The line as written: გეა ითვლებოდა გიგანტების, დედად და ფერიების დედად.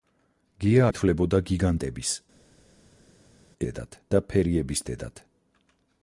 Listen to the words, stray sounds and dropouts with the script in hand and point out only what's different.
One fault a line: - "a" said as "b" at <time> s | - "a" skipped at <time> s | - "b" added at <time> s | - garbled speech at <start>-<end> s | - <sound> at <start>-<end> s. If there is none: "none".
none